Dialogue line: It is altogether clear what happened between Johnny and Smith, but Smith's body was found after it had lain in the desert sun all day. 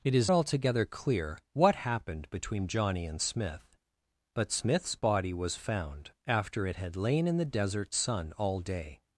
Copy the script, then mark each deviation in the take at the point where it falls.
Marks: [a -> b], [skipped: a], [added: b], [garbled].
It is altogether clear what happened between Johnny and Smith, but Smith's body was found after it had lain in the desert sun all day.